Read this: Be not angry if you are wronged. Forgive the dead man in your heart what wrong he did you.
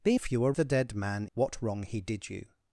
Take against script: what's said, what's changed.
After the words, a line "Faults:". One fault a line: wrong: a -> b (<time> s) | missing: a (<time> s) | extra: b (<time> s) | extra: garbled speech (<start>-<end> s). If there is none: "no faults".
Be if you are the dead man what wrong he did you.
Faults:
missing: not angry (0.2 s)
missing: wronged Forgive (0.5 s)
missing: in your heart (1.3 s)